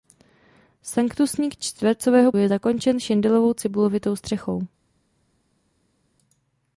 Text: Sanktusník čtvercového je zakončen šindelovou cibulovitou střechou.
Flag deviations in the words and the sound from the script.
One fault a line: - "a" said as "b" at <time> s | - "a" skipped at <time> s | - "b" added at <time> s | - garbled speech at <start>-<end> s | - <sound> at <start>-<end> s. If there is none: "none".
none